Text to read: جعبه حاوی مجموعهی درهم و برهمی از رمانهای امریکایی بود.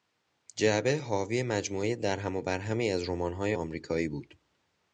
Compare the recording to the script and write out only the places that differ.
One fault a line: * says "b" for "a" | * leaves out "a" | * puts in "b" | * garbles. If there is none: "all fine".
all fine